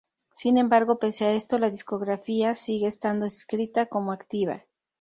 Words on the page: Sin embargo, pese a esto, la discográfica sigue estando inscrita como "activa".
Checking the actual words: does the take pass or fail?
pass